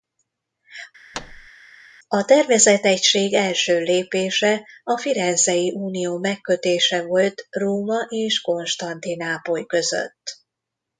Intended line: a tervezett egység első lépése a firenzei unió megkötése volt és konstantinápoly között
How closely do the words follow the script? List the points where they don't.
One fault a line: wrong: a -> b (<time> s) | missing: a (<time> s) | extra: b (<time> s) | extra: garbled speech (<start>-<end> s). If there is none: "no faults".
extra: róma (7.5 s)